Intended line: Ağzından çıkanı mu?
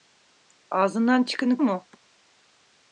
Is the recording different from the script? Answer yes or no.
no